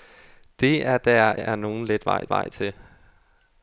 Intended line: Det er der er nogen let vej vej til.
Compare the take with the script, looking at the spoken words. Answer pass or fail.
pass